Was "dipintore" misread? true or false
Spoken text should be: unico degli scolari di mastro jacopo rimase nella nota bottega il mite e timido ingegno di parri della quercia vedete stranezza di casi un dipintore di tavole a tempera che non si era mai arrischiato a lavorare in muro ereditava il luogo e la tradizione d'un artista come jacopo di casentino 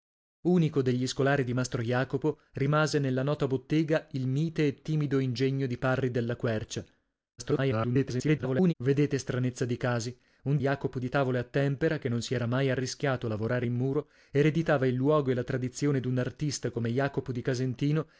true